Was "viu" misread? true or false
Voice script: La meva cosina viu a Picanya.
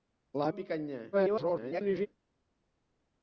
true